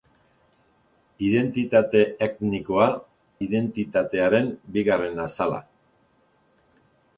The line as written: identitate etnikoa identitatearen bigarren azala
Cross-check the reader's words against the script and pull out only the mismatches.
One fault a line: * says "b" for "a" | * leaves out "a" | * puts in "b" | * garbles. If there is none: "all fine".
all fine